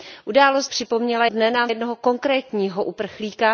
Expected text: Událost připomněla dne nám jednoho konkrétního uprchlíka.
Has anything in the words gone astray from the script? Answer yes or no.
no